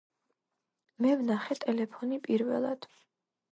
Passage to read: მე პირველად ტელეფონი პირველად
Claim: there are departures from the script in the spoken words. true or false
true